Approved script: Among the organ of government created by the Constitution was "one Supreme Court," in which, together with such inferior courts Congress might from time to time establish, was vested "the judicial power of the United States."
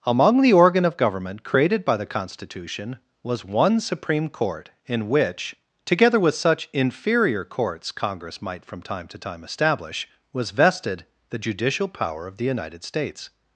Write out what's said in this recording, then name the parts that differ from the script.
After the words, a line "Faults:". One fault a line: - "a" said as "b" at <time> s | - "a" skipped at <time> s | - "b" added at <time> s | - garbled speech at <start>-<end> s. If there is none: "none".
Among the organ of government created by the Constitution was "one Supreme Court," in which, together with such inferior courts Congress might from time to time establish, was vested "the judicial power of the United States."
Faults:
none